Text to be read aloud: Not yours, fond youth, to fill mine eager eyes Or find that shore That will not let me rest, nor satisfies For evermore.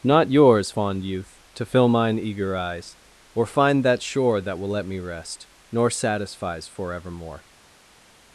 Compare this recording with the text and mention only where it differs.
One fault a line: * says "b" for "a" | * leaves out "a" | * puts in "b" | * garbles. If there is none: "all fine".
* leaves out "not"